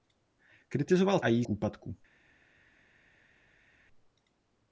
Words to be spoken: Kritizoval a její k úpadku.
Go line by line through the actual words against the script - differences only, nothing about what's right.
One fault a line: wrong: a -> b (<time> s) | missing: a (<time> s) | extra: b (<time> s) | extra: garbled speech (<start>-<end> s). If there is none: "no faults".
no faults